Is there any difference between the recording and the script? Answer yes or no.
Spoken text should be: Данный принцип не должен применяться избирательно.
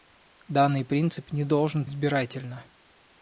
yes